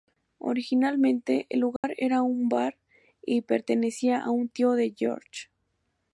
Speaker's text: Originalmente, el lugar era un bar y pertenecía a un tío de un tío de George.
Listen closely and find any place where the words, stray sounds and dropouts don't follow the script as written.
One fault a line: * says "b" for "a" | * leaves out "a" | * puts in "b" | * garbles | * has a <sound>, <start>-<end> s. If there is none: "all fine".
* has a dropout, 1.8-1.8 s
* leaves out "un tío de"